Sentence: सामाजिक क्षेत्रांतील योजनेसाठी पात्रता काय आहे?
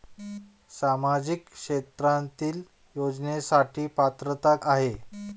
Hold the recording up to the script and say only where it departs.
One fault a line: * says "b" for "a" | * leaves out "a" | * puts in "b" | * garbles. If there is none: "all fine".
* leaves out "काय"